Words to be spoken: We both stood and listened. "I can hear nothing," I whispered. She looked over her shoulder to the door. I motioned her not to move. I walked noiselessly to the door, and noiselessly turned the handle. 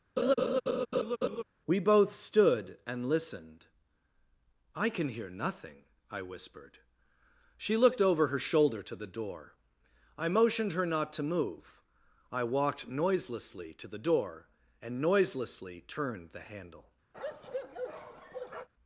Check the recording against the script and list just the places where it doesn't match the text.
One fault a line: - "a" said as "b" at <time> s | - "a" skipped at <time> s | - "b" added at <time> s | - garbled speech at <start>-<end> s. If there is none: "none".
none